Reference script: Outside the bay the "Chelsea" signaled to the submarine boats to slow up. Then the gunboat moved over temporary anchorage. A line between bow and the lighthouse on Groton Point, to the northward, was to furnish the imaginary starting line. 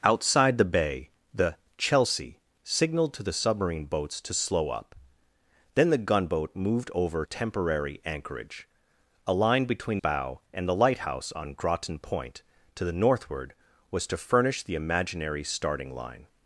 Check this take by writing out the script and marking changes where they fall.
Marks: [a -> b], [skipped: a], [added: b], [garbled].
Outside the bay the "Chelsea" signaled to the submarine boats to slow up. Then the gunboat moved over temporary anchorage. A line between bow and the lighthouse on Groton Point, to the northward, was to furnish the imaginary starting line.